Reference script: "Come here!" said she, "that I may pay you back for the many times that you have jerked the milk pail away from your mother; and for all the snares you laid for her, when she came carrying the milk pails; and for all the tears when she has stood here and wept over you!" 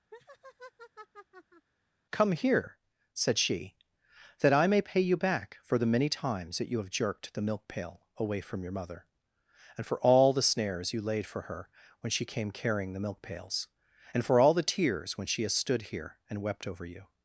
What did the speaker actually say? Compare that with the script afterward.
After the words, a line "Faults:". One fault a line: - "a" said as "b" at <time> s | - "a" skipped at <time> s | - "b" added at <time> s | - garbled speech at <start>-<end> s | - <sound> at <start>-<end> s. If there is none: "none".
"Come here!" said she, "that I may pay you back for the many times that you have jerked the milk pail away from your mother; and for all the snares you laid for her, when she came carrying the milk pails; and for all the tears when she has stood here and wept over you!"
Faults:
- laugh at 0.1-1.7 s